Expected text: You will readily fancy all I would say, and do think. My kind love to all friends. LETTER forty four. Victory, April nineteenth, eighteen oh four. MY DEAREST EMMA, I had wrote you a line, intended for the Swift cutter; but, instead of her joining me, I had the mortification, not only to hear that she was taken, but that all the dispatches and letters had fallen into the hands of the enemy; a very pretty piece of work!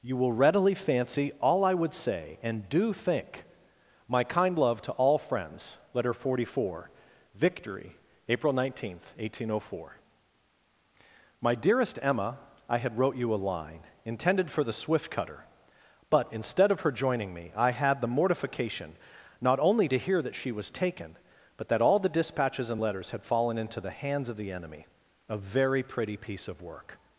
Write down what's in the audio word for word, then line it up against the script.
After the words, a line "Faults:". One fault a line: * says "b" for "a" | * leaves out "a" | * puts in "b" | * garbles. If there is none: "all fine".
You will readily fancy all I would say, and do think. My kind love to all friends. LETTER forty four. Victory, April nineteenth, eighteen oh four. MY DEAREST EMMA, I had wrote you a line, intended for the Swift cutter; but, instead of her joining me, I had the mortification, not only to hear that she was taken, but that all the dispatches and letters had fallen into the hands of the enemy; a very pretty piece of work!
Faults:
all fine